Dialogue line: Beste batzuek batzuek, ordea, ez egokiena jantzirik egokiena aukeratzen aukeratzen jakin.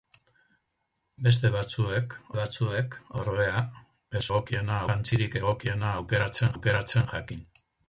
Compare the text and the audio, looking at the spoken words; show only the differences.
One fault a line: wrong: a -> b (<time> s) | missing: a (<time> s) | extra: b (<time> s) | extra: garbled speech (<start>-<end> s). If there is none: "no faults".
no faults